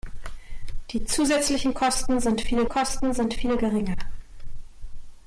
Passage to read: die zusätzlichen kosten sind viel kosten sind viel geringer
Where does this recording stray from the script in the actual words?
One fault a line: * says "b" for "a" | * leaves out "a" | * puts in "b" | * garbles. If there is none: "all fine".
all fine